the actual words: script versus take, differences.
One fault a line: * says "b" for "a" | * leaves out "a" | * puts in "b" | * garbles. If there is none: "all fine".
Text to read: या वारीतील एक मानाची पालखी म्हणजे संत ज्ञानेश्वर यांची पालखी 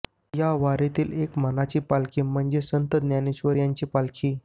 all fine